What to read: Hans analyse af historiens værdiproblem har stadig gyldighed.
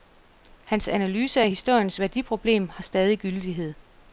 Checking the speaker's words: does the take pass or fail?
pass